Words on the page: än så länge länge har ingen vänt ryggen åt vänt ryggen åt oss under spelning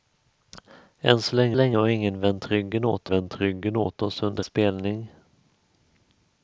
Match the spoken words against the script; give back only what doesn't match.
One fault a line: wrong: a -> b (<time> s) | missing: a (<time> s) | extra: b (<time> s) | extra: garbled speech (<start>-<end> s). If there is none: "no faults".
no faults